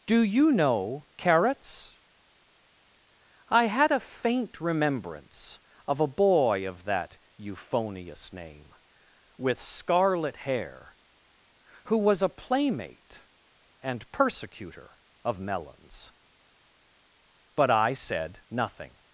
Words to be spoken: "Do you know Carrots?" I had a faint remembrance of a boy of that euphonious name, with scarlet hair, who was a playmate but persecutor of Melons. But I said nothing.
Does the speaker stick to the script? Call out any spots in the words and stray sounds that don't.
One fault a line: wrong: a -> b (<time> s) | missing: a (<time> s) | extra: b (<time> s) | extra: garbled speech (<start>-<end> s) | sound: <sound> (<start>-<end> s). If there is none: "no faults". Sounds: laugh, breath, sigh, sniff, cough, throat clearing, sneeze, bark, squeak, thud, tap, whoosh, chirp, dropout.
wrong: but -> and (13.8 s)